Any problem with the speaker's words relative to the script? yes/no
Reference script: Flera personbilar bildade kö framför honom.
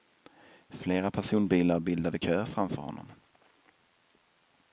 no